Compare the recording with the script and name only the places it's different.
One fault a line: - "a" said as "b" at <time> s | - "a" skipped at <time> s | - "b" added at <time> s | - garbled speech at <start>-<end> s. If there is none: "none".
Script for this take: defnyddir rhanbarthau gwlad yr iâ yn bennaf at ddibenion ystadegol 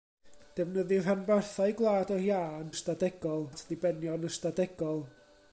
- "bennaf" said as "ystadegol" at 2.7 s